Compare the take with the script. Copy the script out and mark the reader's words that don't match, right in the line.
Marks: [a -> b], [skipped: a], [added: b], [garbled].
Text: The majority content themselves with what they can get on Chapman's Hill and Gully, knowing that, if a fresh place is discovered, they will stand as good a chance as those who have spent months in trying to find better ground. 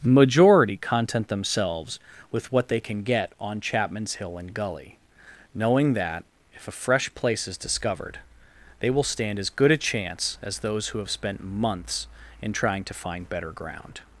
[skipped: The] majority content themselves with what they can get on Chapman's Hill and Gully, knowing that, if a fresh place is discovered, they will stand as good a chance as those who have spent months in trying to find better ground.